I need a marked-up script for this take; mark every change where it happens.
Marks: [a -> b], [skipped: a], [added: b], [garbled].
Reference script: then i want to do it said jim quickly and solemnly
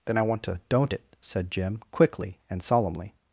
then i want to [do -> don't] it said jim quickly and solemnly